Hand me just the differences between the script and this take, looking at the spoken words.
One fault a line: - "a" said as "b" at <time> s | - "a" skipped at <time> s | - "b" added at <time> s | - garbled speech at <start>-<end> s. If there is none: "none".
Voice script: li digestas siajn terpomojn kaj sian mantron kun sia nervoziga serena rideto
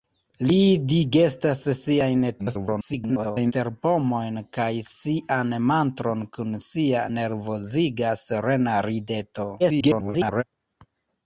- garbled speech at 2.4-3.5 s
- garbled speech at 9.6-10.4 s